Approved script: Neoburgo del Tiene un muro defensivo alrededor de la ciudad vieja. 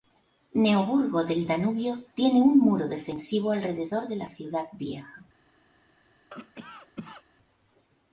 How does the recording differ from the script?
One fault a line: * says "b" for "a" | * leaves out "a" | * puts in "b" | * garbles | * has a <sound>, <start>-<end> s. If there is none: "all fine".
* puts in "Danubio"
* has a cough, 6.3-7.2 s